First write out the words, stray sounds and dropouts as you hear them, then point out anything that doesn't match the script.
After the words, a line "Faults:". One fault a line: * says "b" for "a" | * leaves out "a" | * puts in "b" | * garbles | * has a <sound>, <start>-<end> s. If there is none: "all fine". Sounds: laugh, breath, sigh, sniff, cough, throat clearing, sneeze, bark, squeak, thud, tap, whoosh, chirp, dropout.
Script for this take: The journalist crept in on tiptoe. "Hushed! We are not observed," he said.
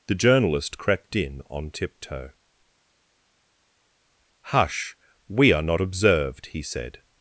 The journalist crept in on tiptoe. "Hush! We are not observed," he said.
Faults:
* says "Hush" for "Hushed"